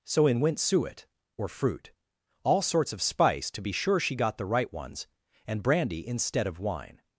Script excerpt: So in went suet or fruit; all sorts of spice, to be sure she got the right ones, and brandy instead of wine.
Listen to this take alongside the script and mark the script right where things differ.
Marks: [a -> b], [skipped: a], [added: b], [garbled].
So in went suet or fruit; all sorts of spice, to be sure she got the right ones, and brandy instead of wine.